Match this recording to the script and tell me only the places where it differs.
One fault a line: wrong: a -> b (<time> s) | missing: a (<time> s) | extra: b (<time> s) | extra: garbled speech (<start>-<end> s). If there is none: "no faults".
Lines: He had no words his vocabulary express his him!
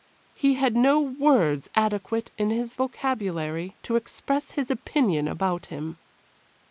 extra: adequate in (1.8 s)
extra: to (3.8 s)
extra: opinion about (4.7 s)